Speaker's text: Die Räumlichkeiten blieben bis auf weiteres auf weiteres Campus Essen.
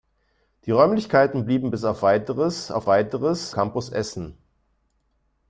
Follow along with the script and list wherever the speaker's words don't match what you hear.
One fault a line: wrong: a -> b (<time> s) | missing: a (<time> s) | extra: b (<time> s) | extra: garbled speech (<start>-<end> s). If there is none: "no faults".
no faults